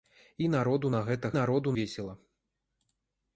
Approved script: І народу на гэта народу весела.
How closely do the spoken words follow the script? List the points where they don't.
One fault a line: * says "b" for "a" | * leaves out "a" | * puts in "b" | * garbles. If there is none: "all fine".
all fine